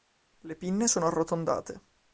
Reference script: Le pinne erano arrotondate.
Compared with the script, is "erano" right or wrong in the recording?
wrong